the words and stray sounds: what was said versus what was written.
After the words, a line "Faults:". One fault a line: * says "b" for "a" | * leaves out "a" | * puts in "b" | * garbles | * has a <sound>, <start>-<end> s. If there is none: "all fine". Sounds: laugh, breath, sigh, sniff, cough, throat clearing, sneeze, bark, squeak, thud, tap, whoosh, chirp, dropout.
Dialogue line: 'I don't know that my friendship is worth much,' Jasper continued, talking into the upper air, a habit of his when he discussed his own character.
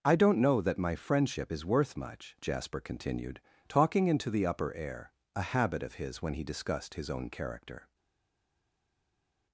'I don't know that my friendship is worth much,' Jasper continued, talking into the upper air, a habit of his when he discussed his own character.
Faults:
all fine